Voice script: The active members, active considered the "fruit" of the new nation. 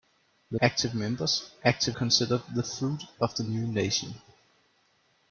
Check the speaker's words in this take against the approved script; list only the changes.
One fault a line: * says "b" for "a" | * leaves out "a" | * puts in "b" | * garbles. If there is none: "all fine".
all fine